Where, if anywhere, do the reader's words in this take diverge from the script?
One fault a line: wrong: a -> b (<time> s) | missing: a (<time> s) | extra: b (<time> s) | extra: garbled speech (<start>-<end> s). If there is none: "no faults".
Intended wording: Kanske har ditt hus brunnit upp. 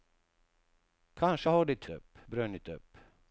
wrong: hus -> upp (1.9 s)